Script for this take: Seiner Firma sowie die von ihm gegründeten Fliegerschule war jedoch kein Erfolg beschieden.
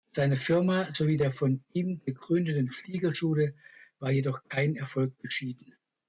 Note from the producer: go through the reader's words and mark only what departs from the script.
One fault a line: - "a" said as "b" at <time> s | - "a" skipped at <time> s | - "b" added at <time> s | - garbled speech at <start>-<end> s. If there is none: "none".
- "die" said as "der" at 1.1 s